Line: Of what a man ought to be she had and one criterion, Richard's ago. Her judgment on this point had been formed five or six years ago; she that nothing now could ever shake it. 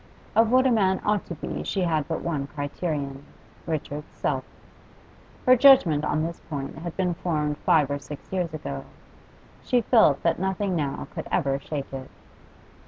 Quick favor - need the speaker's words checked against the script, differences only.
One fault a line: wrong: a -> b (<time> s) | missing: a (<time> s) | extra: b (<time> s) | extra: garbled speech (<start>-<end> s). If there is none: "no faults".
wrong: and -> but (2.1 s)
wrong: ago -> self (4.2 s)
extra: felt (9.8 s)